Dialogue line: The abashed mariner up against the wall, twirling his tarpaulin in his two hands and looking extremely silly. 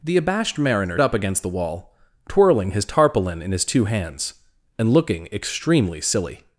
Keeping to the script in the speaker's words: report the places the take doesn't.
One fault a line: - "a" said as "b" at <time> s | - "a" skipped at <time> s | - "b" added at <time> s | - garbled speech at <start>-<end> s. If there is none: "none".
none